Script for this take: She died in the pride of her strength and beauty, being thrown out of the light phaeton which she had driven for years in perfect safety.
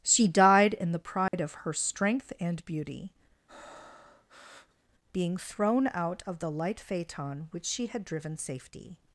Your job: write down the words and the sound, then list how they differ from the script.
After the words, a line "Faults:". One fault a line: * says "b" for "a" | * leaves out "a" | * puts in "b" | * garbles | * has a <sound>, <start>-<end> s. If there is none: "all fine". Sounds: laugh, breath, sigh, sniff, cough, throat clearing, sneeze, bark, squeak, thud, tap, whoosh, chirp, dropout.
She died in the pride of her strength and beauty, being thrown out of the light phaeton which she had driven safety.
Faults:
* has a dropout, 1.3-1.3 s
* has a breath, 3.5-4.8 s
* leaves out "for years in perfect"